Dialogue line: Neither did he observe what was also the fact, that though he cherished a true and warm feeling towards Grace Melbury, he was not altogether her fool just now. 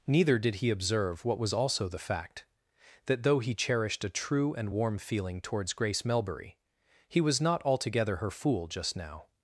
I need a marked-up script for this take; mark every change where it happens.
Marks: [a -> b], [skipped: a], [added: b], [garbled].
Neither did he observe what was also the fact, that though he cherished a true and warm feeling towards Grace Melbury, he was not altogether her fool just now.